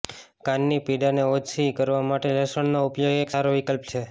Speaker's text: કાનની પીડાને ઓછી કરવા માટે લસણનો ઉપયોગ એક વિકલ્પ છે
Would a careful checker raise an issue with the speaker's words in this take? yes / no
yes